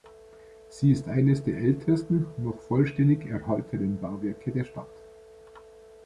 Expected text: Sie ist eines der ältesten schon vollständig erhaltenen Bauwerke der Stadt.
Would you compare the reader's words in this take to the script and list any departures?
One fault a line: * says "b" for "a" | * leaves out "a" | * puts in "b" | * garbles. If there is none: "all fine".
* says "noch" for "schon"